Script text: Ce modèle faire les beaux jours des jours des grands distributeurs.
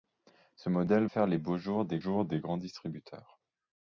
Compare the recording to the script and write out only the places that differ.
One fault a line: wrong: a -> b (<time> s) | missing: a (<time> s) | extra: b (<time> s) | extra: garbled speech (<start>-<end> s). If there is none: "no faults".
no faults